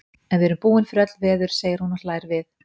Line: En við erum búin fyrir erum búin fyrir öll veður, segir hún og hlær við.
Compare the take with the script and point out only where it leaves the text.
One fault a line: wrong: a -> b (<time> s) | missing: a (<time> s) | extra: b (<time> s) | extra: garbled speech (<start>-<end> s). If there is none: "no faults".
missing: erum búin fyrir (1.0 s)